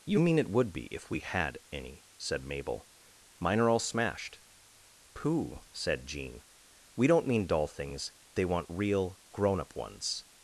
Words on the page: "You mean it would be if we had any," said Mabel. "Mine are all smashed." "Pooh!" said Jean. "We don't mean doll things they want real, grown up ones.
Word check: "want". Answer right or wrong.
right